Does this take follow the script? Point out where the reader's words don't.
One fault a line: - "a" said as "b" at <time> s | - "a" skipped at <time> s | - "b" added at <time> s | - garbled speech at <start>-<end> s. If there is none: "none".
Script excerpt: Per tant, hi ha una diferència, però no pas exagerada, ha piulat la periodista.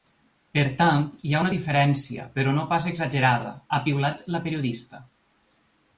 none